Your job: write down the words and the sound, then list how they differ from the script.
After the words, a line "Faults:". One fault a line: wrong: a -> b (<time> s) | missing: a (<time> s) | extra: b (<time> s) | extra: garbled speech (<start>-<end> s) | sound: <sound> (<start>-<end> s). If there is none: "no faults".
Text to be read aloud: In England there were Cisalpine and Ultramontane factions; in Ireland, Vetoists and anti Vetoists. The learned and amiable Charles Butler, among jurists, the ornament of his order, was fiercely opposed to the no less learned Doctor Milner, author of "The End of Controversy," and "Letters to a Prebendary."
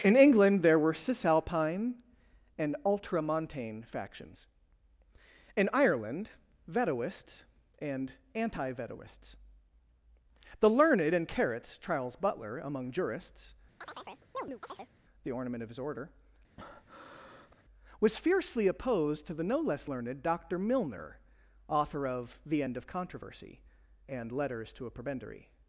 In England there were Cisalpine and Ultramontane factions; in Ireland, Vetoists and anti Vetoists. The learned and carrots Charles Butler, among jurists, the ornament of his order, was fiercely opposed to the no less learned Doctor Milner, author of "The End of Controversy," and "Letters to a Prebendary."
Faults:
wrong: amiable -> carrots (11.3 s)
sound: chirp (13.8-14.9 s)
sound: breath (16.6-17.6 s)